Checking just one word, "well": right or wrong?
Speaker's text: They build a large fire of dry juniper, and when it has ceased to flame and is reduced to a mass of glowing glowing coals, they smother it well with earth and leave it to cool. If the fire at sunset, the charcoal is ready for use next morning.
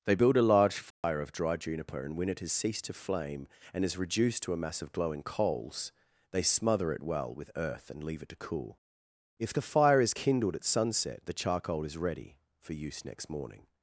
right